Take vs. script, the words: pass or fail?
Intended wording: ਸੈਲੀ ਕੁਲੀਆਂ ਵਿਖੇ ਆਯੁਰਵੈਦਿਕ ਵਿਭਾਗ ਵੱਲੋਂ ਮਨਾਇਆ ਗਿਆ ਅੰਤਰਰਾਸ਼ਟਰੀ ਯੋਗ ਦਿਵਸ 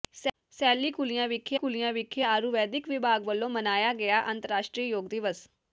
fail